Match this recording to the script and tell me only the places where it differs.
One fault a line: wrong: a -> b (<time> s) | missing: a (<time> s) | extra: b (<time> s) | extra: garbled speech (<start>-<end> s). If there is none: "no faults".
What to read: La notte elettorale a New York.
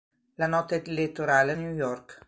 no faults